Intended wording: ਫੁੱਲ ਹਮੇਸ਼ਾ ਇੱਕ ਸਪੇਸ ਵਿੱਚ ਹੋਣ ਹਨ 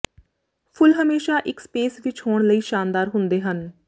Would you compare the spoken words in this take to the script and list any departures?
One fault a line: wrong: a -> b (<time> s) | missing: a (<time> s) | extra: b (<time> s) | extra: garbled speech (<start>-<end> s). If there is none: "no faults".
extra: ਲਈ ਸ਼ਾਨਦਾਰ ਹੁੰਦੇ (2.5 s)